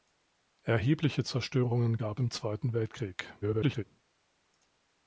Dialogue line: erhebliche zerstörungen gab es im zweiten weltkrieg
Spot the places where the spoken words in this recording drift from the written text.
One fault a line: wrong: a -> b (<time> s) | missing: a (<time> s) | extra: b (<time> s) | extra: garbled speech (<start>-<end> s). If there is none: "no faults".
missing: es (2.2 s)
extra: garbled speech (3.4-3.8 s)